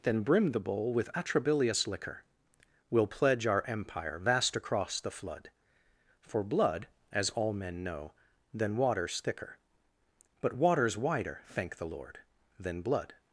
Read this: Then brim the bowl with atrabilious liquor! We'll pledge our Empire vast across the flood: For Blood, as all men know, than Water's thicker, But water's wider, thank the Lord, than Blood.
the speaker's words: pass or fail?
pass